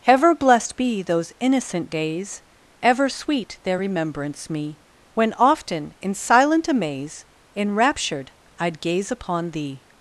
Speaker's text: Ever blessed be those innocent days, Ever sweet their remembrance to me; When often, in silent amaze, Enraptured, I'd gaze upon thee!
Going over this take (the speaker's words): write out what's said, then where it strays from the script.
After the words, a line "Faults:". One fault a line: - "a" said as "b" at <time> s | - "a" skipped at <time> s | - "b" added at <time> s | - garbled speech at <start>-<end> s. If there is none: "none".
Ever blessed be those innocent days, Ever sweet their remembrance me; When often, in silent amaze, Enraptured, I'd gaze upon thee!
Faults:
- "to" skipped at 4.5 s